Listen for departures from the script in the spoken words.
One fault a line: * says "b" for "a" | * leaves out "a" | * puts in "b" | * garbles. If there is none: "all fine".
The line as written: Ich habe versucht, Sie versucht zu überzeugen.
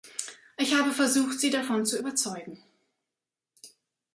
* says "davon" for "versucht"